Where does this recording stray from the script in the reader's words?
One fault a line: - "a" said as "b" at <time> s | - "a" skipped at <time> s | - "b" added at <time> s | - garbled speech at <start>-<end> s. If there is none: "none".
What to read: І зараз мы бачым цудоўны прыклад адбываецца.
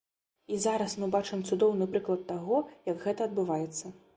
- "таго як гэта" added at 2.3 s